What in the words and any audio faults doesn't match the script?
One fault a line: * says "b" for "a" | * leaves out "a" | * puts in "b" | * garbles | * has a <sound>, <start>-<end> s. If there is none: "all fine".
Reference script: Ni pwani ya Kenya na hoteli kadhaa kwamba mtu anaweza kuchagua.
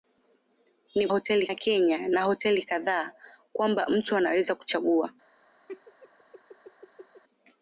* says "hoteli" for "pwani"
* has a laugh, 5.7-7.2 s